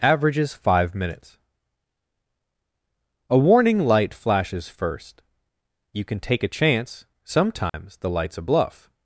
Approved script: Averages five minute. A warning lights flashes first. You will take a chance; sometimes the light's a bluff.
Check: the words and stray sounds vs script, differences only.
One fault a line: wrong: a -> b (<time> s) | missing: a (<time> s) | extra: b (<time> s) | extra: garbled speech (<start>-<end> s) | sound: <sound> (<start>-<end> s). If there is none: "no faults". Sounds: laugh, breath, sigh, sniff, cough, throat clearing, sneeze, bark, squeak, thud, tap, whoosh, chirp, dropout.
wrong: minute -> minutes (0.9 s)
wrong: lights -> light (3.8 s)
wrong: will -> can (6.0 s)
sound: dropout (7.7-7.7 s)